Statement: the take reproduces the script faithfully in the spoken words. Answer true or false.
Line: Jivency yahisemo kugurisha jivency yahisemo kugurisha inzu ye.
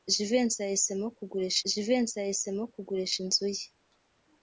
true